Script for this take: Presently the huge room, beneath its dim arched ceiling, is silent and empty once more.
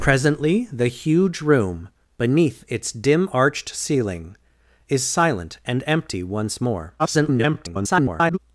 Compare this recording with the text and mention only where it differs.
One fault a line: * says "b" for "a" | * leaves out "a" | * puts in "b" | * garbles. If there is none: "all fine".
* garbles